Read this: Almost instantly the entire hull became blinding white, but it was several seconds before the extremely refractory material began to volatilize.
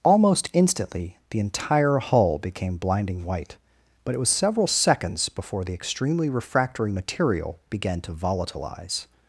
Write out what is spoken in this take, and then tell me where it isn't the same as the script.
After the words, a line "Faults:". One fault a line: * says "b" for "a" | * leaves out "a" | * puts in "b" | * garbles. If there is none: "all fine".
Almost instantly the entire hull became blinding white, but it was several seconds before the extremely refractory material began to volatilize.
Faults:
all fine